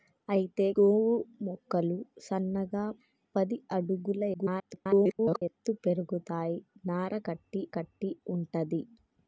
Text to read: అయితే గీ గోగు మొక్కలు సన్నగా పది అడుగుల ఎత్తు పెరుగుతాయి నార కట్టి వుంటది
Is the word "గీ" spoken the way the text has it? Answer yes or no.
no